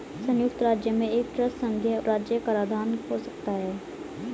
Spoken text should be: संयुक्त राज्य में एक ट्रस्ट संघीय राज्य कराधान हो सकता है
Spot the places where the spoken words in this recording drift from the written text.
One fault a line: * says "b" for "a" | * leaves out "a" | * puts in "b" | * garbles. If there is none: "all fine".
all fine